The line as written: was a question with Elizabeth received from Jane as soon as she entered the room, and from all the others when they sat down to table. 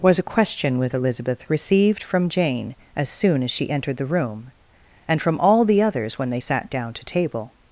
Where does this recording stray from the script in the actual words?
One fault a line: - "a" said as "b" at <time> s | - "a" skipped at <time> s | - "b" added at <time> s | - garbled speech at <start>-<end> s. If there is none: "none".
none